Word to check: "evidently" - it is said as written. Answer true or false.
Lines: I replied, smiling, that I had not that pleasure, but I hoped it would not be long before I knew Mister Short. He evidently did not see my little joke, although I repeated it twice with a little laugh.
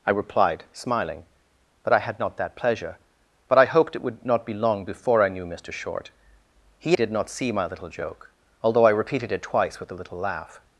false